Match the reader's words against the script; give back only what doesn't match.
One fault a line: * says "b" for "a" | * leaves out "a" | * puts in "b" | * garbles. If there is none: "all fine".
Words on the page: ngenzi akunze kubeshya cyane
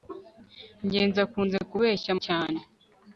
all fine